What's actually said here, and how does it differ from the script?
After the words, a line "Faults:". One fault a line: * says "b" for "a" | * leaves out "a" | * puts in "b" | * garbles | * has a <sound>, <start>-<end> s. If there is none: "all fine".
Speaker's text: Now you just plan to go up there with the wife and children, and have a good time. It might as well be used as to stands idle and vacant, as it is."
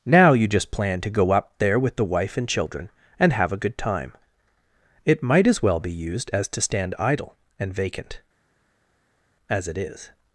Now you just plan to go up there with the wife and children, and have a good time. It might as well be used as to stand idle and vacant, as it is."
Faults:
* says "stand" for "stands"